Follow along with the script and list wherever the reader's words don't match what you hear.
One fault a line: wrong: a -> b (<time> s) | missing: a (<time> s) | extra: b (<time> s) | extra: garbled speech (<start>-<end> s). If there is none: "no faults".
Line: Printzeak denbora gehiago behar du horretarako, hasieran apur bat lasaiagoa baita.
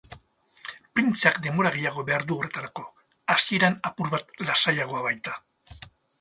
no faults